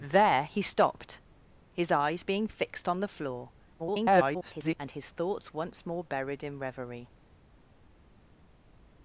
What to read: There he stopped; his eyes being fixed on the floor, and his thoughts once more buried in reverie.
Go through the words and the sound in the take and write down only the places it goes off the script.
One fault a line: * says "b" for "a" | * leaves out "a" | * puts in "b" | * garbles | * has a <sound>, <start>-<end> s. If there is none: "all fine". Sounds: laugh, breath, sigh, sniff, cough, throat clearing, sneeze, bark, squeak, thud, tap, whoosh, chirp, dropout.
* garbles